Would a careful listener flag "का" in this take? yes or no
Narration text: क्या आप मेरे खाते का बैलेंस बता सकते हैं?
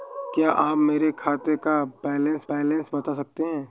no